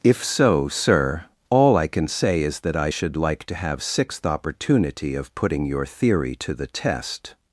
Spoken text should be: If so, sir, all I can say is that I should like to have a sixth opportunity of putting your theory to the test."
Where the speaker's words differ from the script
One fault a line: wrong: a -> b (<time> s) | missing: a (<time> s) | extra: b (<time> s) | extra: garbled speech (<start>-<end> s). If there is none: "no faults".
missing: a (3.8 s)